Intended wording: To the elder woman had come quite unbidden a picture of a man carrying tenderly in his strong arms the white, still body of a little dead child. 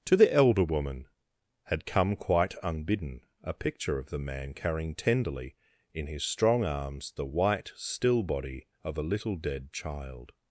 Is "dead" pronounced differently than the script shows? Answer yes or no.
no